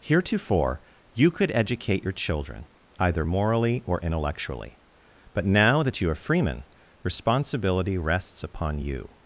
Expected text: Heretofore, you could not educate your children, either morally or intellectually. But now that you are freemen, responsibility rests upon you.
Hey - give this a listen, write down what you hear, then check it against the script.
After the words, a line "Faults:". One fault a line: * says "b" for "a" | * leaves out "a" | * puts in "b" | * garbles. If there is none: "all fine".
Heretofore, you could educate your children, either morally or intellectually. But now that you are freemen, responsibility rests upon you.
Faults:
* leaves out "not"